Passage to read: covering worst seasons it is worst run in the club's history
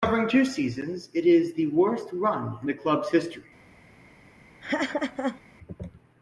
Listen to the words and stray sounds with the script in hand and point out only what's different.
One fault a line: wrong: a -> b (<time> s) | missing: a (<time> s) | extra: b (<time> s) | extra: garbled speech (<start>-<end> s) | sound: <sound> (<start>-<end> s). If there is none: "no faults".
wrong: worst -> two (0.3 s)
extra: the (1.5 s)
sound: laugh (4.6-5.4 s)